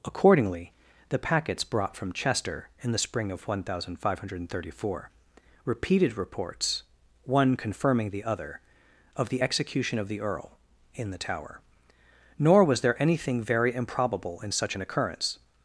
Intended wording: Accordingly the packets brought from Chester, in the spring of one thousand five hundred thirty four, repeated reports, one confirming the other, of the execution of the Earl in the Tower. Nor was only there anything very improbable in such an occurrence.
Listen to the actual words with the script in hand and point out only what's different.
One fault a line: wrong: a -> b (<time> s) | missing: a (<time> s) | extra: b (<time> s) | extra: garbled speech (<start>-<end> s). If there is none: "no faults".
missing: only (12.8 s)